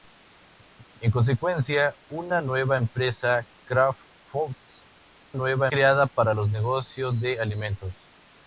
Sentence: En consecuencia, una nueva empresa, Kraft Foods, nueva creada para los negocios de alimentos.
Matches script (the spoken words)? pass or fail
pass